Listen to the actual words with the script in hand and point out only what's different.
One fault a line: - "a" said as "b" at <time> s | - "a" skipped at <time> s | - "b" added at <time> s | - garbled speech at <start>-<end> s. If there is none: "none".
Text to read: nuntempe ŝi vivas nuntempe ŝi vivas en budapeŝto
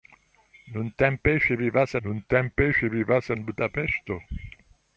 none